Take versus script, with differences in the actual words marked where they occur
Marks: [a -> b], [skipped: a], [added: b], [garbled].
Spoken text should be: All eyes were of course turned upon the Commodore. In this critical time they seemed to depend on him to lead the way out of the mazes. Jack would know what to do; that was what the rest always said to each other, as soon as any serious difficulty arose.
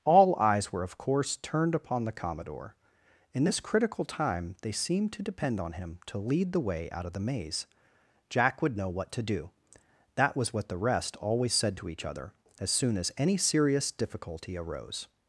All eyes were of course turned upon the Commodore. In this critical time they seemed to depend on him to lead the way out of the [mazes. -> maze] Jack would know what to do; that was what the rest always said to each other, as soon as any serious difficulty arose.